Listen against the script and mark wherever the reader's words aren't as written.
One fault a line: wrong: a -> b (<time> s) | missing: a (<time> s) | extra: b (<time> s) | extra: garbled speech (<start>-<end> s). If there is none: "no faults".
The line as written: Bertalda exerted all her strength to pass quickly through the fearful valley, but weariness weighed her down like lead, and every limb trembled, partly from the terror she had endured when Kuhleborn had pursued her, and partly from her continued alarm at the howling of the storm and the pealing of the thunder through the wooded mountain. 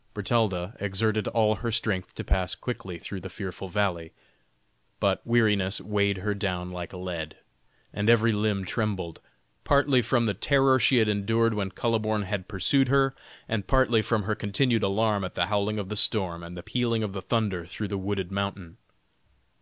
no faults